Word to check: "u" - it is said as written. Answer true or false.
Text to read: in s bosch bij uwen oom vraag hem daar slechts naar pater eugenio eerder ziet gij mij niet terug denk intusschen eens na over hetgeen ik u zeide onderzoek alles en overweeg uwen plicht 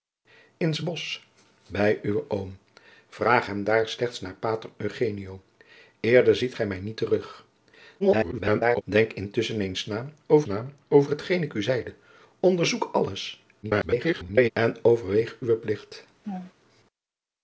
true